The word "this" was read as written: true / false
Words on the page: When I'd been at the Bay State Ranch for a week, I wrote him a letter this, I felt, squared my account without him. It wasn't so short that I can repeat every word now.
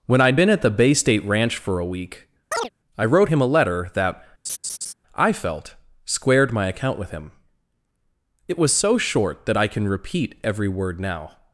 false